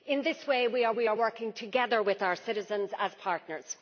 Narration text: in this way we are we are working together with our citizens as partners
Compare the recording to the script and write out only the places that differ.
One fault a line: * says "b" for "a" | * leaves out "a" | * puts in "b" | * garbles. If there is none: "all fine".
all fine